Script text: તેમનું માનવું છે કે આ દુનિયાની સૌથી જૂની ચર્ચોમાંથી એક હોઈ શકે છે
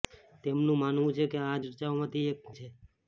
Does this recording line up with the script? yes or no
no